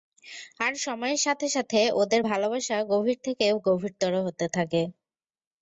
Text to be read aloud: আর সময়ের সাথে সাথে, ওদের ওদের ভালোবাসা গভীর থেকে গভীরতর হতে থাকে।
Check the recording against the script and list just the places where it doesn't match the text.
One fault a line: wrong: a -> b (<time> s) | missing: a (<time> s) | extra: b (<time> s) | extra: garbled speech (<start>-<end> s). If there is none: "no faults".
missing: ওদের (2.2 s)